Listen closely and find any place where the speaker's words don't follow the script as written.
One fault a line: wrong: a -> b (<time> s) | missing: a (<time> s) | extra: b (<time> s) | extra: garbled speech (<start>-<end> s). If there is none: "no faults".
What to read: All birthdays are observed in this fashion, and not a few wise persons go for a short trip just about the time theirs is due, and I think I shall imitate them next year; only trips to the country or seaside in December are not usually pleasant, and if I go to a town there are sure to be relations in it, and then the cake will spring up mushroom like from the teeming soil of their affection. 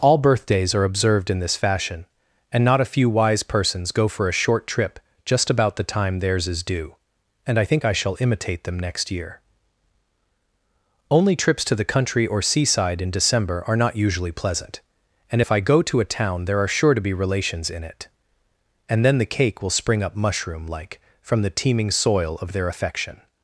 no faults